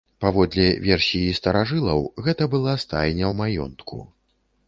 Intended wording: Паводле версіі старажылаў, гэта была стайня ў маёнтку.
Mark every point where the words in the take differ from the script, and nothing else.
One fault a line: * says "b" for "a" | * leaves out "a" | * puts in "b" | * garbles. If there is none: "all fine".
all fine